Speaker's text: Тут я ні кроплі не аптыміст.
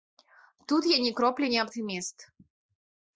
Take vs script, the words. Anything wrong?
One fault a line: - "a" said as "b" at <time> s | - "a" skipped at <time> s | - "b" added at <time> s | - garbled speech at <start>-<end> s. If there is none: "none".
none